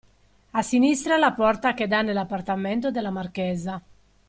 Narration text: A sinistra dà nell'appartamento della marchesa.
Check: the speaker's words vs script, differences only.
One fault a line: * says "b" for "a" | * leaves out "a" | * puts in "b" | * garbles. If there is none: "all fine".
* puts in "la porta che"